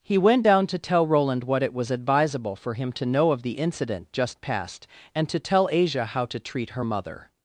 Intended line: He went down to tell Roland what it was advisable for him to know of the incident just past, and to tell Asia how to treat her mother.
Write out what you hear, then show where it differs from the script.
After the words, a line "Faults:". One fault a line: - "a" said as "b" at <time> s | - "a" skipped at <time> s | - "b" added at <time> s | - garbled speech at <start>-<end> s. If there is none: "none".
He went down to tell Roland what it was advisable for him to know of the incident just past, and to tell Asia how to treat her mother.
Faults:
none